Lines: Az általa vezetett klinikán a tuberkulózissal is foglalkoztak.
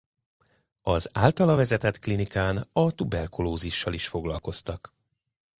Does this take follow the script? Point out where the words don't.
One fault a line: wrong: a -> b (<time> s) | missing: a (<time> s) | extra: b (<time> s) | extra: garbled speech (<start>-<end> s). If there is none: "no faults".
no faults